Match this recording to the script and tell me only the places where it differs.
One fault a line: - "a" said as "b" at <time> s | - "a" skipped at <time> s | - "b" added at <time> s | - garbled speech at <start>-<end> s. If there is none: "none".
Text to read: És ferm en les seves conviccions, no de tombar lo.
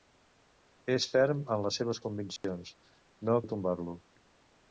none